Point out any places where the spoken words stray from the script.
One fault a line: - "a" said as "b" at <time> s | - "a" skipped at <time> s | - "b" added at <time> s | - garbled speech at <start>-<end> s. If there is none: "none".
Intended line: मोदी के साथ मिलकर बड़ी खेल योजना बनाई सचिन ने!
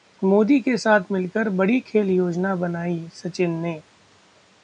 none